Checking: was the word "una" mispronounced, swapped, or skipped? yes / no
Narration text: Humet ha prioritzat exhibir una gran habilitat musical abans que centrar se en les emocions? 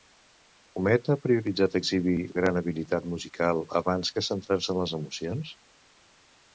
yes